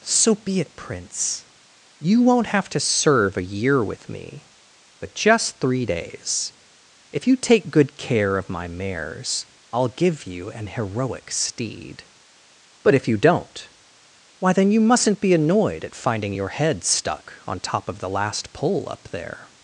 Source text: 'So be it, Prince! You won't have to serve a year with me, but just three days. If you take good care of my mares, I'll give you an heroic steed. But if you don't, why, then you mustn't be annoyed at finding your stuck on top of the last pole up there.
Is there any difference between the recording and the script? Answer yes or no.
yes